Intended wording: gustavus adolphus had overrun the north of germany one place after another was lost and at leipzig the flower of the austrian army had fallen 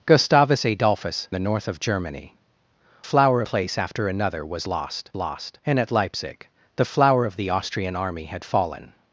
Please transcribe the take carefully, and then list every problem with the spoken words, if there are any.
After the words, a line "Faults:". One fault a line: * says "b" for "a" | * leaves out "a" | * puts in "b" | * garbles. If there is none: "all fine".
gustavus adolphus the north of germany flower place after another was lost lost and at leipzig the flower of the austrian army had fallen
Faults:
* leaves out "had overrun"
* says "flower" for "one"
* puts in "lost"